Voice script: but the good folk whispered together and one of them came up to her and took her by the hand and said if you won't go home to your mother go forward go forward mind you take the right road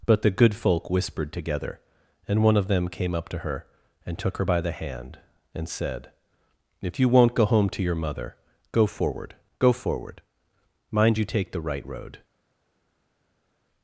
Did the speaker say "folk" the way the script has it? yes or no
yes